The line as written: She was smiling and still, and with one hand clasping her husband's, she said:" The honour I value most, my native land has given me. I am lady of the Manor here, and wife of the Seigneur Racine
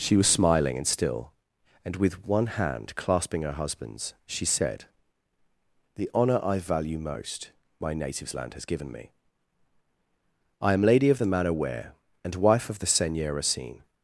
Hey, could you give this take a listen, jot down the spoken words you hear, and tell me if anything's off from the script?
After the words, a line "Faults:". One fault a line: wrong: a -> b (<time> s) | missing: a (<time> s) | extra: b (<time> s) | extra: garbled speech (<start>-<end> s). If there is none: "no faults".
She was smiling and still, and with one hand clasping her husband's, she said:" The honour I value most, my natives land has given me. I am lady of the Manor where, and wife of the Seigneur Racine
Faults:
wrong: native -> natives (7.9 s)
wrong: here -> where (11.5 s)